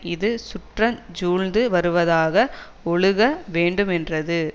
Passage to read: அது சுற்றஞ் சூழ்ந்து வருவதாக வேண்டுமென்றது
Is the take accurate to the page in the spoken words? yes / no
no